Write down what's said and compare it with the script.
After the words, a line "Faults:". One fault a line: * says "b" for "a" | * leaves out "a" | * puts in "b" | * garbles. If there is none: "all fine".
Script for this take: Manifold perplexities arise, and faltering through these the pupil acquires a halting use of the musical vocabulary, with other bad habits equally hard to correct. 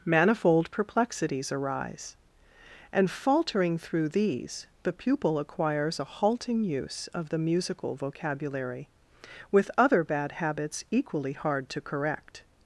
Manifold perplexities arise, and faltering through these the pupil acquires a halting use of the musical vocabulary, with other bad habits equally hard to correct.
Faults:
all fine